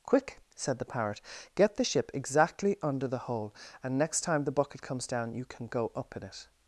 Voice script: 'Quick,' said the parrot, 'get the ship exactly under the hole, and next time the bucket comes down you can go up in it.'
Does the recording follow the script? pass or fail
pass